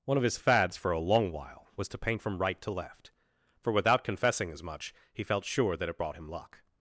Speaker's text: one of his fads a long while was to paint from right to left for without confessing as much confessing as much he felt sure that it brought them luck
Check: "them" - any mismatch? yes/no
yes